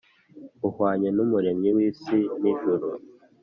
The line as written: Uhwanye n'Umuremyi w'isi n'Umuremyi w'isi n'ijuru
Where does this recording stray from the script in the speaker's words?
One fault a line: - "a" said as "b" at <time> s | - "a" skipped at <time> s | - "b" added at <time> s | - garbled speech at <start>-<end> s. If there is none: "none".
- "n'Umuremyi w'isi" skipped at 2.2 s